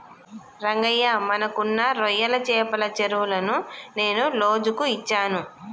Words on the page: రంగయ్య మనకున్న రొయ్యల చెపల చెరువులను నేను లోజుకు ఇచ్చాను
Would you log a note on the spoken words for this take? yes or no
no